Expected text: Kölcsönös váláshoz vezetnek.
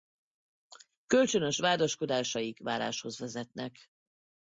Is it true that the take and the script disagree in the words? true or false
true